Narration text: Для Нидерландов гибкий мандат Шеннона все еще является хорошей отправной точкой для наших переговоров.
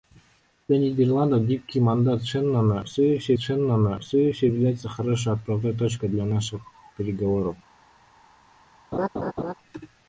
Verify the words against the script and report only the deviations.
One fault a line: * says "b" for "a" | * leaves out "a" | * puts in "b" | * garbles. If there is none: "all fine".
* puts in "Шеннона все еще"